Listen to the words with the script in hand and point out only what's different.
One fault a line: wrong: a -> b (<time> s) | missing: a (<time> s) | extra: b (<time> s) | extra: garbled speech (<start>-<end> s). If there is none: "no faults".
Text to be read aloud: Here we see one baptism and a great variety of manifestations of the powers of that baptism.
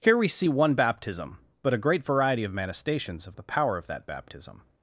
wrong: and -> but (1.6 s)
wrong: powers -> power (3.4 s)